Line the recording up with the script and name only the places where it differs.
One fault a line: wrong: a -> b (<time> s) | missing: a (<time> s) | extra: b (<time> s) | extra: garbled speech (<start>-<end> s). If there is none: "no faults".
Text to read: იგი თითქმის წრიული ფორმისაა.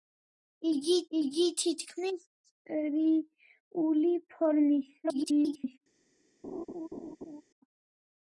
extra: იგი (1.2 s)
extra: garbled speech (5.0-5.8 s)